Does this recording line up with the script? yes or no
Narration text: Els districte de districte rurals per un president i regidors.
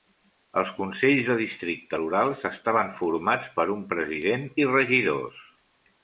no